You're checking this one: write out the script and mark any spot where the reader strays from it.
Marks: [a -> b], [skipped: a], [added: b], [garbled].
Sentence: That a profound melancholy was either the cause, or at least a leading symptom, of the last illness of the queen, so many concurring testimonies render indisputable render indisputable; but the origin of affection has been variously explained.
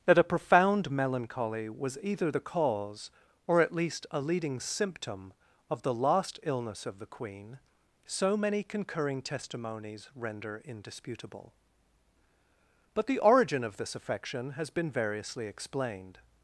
That a profound melancholy was either the cause, or at least a leading symptom, of the last illness of the queen, so many concurring testimonies render indisputable [skipped: render indisputable;] but the origin of [added: this] affection has been variously explained.